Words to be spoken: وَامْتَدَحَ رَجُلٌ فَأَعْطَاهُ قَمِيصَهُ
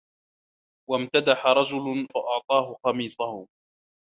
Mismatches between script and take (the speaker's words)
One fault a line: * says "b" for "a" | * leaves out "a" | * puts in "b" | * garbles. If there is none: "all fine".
all fine